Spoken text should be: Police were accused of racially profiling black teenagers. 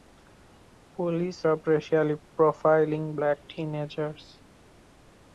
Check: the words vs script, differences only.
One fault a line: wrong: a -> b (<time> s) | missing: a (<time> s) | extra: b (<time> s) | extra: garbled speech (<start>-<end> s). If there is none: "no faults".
missing: were accused (1.4 s)